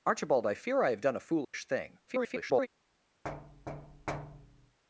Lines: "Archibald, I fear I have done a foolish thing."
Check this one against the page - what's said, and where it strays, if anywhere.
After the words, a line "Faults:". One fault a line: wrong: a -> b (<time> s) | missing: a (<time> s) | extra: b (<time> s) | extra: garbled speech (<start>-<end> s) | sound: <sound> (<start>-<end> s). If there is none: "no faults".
"Archibald, I fear I have done a foolish thing." [garbled]
Faults:
sound: dropout (1.4-1.5 s)
extra: garbled speech (2.1-2.7 s)
sound: thud (3.2-4.8 s)